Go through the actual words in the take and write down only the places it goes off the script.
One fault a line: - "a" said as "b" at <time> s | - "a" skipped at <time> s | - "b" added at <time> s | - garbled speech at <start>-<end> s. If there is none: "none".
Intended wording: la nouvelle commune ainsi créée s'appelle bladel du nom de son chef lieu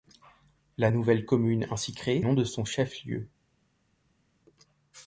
- "s'appelle bladel du" skipped at 2.2 s